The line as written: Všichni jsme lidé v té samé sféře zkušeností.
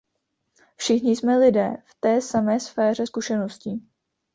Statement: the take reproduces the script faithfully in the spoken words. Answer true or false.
true